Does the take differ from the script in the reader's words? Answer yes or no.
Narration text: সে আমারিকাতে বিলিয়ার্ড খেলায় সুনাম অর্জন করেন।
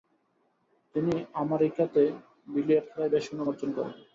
yes